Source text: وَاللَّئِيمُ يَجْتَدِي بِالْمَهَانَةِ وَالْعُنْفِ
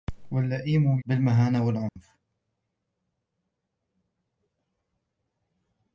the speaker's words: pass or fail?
fail